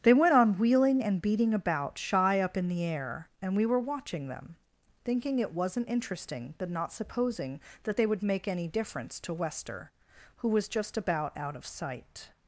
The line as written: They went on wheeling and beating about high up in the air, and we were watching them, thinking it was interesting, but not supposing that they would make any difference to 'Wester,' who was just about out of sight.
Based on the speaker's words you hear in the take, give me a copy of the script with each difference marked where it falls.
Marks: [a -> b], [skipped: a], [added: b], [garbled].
They went on wheeling and beating about [high -> shy] up in the air, and we were watching them, thinking it [was -> wasn't] interesting, but not supposing that they would make any difference to 'Wester,' who was just about out of sight.